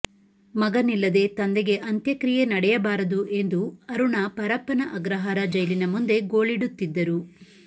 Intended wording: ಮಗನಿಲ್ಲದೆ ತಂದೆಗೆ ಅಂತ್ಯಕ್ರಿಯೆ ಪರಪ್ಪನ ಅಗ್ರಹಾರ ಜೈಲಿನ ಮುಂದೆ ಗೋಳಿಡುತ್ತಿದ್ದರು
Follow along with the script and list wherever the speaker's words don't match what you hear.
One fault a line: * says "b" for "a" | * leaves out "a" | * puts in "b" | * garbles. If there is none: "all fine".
* puts in "ನಡೆಯಬಾರದು ಎಂದು ಅರುಣಾ"